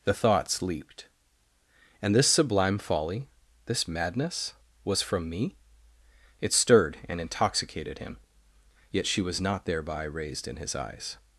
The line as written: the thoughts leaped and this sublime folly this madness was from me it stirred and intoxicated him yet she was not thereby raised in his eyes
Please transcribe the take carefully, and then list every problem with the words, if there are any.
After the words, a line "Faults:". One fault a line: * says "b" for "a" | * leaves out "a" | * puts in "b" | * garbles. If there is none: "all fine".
the thoughts leaped and this sublime folly this madness was from me it stirred and intoxicated him yet she was not thereby raised in his eyes
Faults:
all fine